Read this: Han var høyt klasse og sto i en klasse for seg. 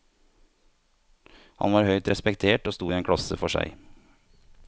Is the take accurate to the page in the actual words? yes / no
no